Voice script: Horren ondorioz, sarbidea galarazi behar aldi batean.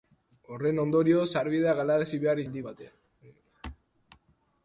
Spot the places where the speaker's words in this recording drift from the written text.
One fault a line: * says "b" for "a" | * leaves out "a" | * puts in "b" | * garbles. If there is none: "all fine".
all fine